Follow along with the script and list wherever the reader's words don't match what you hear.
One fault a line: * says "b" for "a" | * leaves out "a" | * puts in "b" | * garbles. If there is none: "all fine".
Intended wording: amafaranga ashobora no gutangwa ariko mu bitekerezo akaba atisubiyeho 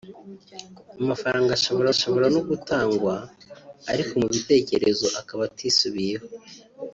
* puts in "ashobora"